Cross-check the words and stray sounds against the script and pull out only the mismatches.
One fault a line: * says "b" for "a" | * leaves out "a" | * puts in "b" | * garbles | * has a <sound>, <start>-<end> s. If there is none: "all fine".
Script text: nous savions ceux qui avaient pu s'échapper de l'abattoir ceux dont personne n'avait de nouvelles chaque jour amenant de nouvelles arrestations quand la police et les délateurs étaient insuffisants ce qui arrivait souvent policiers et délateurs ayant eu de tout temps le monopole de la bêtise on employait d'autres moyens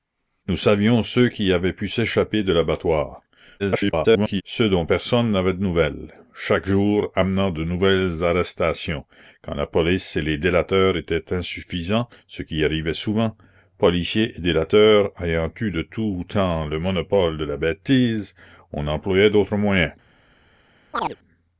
* garbles
* has a chirp, 20.9-21.2 s